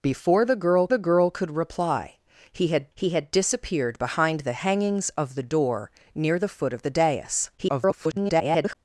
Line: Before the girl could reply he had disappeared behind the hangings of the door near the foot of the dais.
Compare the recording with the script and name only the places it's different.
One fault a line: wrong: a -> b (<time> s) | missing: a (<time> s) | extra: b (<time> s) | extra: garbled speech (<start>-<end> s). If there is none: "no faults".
extra: the girl (0.9 s)
extra: he had (2.9 s)
extra: garbled speech (7.6-8.8 s)